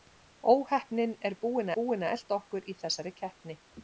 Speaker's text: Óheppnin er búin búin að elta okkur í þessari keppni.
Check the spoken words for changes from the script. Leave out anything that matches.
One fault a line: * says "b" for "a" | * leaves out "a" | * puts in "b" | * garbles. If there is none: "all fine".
all fine